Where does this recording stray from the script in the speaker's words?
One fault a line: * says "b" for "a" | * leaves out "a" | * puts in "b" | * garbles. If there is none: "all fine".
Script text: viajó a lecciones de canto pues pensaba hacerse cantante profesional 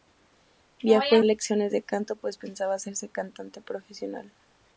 all fine